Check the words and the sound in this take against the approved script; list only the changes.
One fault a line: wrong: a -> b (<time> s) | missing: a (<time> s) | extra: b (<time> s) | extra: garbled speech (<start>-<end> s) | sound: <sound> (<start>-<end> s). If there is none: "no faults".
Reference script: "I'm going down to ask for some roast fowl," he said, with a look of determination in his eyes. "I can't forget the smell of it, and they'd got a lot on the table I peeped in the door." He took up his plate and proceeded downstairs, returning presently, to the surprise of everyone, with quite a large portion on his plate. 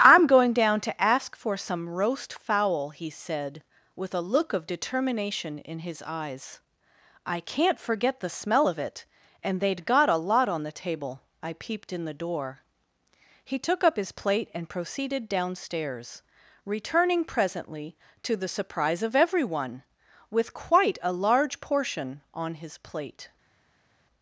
no faults